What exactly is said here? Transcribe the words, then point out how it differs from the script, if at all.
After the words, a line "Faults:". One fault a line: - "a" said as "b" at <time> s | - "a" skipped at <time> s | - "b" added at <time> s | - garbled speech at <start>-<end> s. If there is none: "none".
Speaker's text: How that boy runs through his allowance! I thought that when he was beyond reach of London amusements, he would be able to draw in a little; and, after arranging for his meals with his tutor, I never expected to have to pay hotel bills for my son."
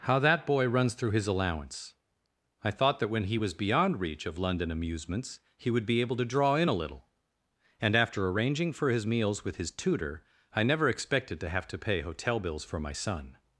How that boy runs through his allowance! I thought that when he was beyond reach of London amusements, he would be able to draw in a little; and, after arranging for his meals with his tutor, I never expected to have to pay hotel bills for my son."
Faults:
none